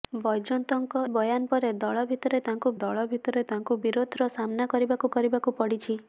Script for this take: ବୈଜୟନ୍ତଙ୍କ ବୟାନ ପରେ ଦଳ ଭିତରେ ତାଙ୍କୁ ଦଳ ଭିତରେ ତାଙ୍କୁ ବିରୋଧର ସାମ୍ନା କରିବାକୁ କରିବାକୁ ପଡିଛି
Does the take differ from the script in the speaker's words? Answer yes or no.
no